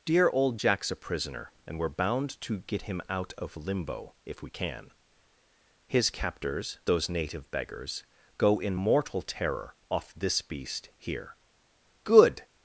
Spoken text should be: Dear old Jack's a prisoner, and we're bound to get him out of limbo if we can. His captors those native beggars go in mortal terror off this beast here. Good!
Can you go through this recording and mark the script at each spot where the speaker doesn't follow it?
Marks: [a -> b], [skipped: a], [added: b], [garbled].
Dear old Jack's a prisoner, and we're bound to get him out of limbo if we can. His captors those native beggars go in mortal terror off this beast here. Good!